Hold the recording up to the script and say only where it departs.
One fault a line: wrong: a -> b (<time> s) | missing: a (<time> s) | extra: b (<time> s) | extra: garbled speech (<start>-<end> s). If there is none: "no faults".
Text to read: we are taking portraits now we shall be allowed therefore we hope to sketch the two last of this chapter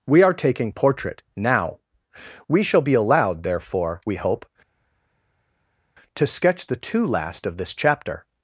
wrong: portraits -> portrait (0.7 s)